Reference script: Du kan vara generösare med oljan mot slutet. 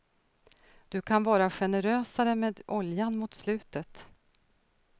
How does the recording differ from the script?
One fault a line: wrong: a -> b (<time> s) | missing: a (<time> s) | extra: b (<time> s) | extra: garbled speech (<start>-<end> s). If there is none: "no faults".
no faults